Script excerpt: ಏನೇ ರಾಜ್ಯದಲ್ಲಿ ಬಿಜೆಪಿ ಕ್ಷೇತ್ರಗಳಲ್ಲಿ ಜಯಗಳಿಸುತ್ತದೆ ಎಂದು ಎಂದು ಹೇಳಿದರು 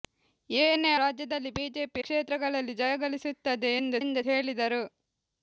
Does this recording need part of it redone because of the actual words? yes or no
no